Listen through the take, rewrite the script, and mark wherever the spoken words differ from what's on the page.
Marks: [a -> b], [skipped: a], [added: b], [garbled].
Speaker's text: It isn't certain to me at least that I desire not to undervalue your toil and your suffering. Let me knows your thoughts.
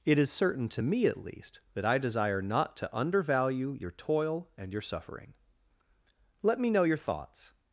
It [isn't -> is] certain to me at least that I desire not to undervalue your toil and your suffering. Let me [knows -> know] your thoughts.